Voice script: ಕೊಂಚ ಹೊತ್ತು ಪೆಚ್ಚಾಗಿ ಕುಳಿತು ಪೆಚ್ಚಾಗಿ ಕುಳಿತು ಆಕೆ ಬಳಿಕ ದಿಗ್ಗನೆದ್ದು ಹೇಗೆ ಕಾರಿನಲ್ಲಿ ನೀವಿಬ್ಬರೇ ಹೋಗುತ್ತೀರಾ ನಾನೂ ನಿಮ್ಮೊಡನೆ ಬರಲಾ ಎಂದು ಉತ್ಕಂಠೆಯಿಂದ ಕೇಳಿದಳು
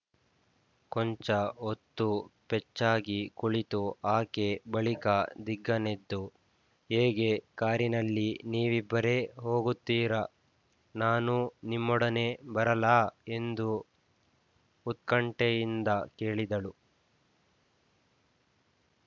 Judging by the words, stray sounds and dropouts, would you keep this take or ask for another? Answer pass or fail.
fail